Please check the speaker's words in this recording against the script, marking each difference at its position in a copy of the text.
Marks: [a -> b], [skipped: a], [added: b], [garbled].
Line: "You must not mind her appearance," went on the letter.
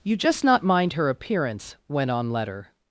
"You [must -> just] not mind her appearance," went on [skipped: the] letter.